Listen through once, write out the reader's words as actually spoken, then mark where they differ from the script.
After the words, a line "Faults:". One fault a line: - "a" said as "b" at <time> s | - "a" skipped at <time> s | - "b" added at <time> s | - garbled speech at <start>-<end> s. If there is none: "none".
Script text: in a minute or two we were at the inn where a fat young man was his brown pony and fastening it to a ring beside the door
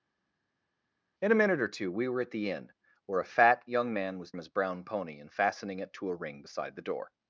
in a minute or two we were at the inn where a fat young man was his brown pony and fastening it to a ring beside the door
Faults:
none